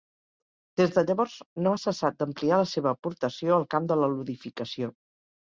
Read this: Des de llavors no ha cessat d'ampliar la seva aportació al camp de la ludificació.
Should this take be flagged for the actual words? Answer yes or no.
no